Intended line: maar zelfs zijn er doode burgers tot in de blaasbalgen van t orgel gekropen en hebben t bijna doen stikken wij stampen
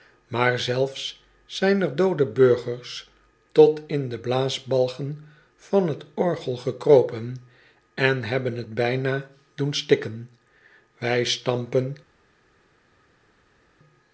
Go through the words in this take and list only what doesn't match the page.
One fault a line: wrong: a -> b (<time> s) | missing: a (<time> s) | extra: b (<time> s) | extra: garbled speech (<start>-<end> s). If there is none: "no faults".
no faults